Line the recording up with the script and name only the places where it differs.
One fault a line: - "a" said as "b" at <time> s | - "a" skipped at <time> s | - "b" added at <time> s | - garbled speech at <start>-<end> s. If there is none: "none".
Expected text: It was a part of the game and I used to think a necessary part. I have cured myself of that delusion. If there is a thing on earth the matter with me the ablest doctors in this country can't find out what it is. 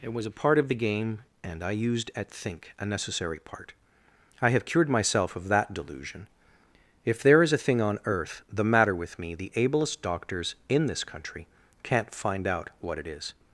- "to" said as "at" at 2.1 s